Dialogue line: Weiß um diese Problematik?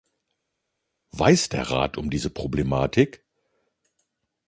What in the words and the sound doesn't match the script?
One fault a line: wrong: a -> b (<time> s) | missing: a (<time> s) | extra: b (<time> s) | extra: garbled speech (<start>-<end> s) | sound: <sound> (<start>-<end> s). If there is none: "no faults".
extra: der Rat (1.5 s)